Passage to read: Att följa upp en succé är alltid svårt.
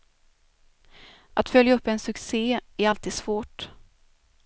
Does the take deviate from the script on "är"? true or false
false